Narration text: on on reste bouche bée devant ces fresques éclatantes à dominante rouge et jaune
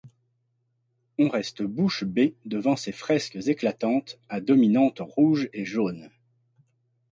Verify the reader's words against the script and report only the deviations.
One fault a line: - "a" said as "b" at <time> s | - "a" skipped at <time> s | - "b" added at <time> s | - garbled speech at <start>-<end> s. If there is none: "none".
- "on" skipped at 1.3 s